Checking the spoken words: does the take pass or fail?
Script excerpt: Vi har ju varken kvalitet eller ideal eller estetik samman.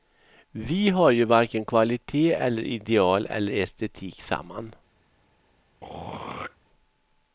pass